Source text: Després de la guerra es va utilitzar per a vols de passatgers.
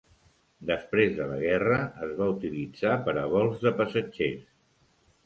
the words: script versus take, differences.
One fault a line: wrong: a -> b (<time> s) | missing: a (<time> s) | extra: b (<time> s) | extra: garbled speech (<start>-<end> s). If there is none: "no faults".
no faults